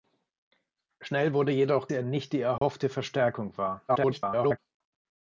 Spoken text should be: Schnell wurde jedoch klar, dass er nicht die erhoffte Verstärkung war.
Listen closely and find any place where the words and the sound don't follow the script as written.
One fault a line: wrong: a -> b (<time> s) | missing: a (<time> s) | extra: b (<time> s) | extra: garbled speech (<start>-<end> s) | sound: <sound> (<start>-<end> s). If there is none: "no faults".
missing: klar dass (1.9 s)
sound: dropout (2.6-2.6 s)
extra: garbled speech (3.9-4.6 s)